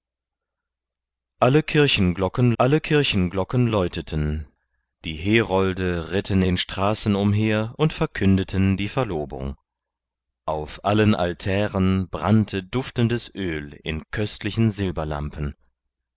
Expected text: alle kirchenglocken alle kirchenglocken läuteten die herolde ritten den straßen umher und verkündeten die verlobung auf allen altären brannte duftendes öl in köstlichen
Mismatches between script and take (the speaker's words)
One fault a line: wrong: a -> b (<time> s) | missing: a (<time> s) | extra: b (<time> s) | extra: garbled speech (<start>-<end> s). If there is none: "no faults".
no faults